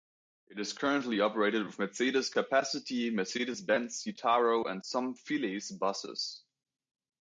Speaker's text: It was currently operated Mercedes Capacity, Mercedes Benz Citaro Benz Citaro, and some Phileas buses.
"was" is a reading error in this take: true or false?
true